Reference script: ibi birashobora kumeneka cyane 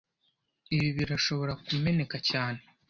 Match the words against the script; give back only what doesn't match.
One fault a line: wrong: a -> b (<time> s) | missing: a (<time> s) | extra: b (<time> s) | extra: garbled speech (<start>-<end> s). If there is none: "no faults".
no faults